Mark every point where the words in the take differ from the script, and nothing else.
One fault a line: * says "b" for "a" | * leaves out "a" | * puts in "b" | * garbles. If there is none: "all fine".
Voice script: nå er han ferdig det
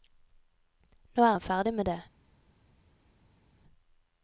* puts in "med"